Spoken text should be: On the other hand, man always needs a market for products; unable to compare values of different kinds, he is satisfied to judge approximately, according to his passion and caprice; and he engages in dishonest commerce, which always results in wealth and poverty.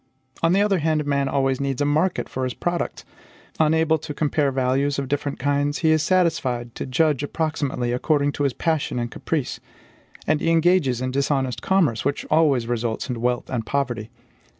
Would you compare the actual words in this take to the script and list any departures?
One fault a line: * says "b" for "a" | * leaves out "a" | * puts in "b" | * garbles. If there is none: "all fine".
* puts in "his"